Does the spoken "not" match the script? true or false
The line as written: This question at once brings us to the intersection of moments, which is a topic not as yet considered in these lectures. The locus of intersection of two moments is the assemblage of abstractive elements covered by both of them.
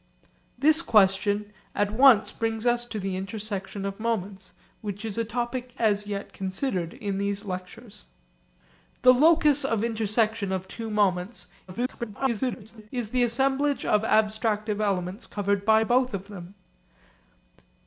false